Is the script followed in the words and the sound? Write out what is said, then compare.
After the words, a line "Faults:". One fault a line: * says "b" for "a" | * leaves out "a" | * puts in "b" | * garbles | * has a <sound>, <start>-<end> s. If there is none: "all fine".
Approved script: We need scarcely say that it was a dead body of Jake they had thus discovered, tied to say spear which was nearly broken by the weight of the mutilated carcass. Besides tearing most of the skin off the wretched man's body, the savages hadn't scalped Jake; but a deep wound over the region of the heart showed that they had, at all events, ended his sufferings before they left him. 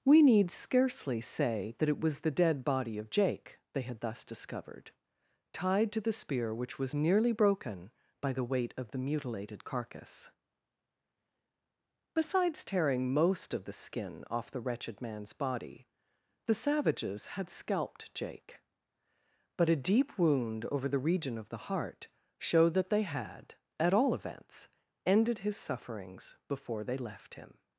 We need scarcely say that it was the dead body of Jake they had thus discovered, tied to the spear which was nearly broken by the weight of the mutilated carcass. Besides tearing most of the skin off the wretched man's body, the savages had scalped Jake; but a deep wound over the region of the heart showed that they had, at all events, ended his sufferings before they left him.
Faults:
* says "the" for "a"
* says "the" for "say"
* says "had" for "hadn't"